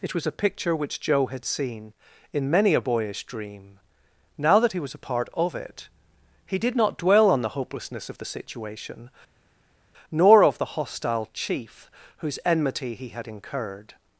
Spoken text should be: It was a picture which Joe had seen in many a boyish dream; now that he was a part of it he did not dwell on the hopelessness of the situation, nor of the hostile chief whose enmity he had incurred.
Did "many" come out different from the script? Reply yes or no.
no